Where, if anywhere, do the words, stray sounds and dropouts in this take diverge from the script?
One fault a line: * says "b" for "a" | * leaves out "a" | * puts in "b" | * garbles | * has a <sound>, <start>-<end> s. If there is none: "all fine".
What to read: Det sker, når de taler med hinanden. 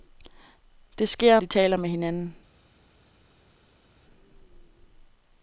* leaves out "når"